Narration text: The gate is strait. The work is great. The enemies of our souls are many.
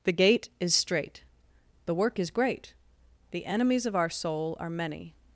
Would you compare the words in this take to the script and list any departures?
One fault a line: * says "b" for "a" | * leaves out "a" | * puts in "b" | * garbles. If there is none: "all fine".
* says "soul" for "souls"